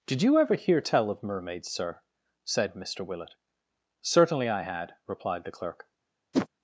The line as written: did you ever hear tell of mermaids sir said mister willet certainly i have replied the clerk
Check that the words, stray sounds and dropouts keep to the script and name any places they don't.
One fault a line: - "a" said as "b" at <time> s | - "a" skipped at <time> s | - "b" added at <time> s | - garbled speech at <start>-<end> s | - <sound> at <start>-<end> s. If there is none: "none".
- "have" said as "had" at 4.6 s
- whoosh at 6.3-6.5 s